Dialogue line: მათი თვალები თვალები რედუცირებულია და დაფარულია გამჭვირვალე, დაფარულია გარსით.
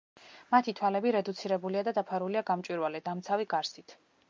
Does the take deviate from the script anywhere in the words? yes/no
yes